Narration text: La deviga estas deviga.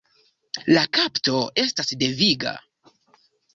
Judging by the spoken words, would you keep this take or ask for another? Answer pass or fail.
fail